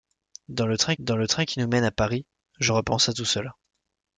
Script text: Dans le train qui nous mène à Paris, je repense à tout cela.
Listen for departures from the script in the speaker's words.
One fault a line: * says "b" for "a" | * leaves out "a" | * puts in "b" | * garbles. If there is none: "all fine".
* puts in "dans le train"